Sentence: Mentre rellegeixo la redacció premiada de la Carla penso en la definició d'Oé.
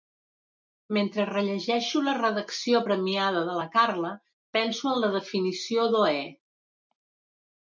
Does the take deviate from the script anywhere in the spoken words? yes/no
no